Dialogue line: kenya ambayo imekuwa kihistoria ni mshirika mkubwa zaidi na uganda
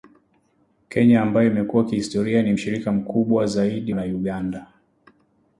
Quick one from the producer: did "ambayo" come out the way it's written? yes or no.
yes